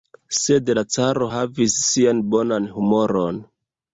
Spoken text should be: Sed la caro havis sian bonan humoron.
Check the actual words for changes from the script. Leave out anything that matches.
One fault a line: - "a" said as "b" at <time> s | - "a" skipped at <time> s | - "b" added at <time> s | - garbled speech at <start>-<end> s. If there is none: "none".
none